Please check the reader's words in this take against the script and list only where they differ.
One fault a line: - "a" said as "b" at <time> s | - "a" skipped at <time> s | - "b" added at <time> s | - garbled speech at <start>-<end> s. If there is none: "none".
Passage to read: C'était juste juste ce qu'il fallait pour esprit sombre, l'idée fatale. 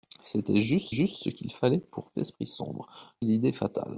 none